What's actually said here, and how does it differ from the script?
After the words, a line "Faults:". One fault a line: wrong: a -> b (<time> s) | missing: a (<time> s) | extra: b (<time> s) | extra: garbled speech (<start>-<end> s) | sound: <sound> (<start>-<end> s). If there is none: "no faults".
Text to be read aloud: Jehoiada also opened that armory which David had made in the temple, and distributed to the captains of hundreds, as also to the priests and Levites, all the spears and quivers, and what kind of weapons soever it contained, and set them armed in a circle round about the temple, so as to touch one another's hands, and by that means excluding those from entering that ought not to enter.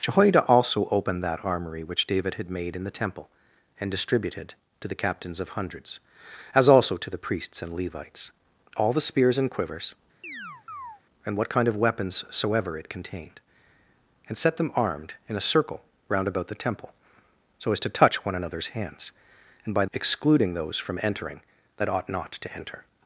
Jehoiada also opened that armory which David had made in the temple, and distributed to the captains of hundreds, as also to the priests and Levites, all the spears and quivers, and what kind of weapons soever it contained, and set them armed in a circle round about the temple, so as to touch one another's hands, and by excluding those from entering that ought not to enter.
Faults:
sound: chirp (10.2-11.0 s)
missing: that means (19.8 s)